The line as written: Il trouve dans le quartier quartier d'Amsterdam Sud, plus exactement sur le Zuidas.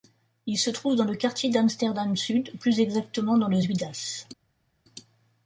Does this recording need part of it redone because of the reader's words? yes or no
yes